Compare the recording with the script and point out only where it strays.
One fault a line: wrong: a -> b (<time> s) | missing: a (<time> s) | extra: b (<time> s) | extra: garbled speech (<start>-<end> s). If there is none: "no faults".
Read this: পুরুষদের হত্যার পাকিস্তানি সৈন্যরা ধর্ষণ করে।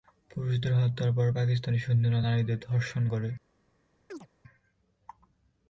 extra: পর (1.1 s)
extra: নারীদের (2.2 s)